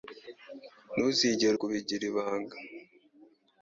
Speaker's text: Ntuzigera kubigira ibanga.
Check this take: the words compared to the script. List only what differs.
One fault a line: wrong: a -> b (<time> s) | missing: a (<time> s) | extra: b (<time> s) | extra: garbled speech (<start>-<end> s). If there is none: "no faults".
no faults